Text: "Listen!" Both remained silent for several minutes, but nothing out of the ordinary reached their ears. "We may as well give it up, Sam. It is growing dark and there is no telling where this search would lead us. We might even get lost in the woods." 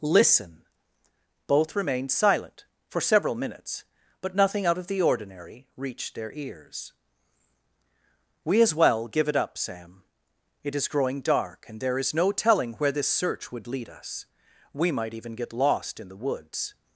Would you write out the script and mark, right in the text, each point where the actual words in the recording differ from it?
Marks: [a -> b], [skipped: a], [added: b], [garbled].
"Listen!" Both remained silent for several minutes, but nothing out of the ordinary reached their ears. "We [skipped: may] as well give it up, Sam. It is growing dark and there is no telling where this search would lead us. We might even get lost in the woods."